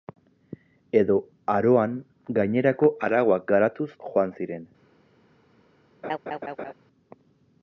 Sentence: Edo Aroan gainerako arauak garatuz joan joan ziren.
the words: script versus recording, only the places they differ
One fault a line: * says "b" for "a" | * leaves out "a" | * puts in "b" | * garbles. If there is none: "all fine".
* leaves out "joan"